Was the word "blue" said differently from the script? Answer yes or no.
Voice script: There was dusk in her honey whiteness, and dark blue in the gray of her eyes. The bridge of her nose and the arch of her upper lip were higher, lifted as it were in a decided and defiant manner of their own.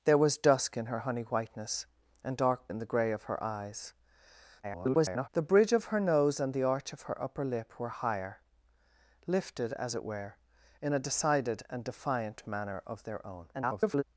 yes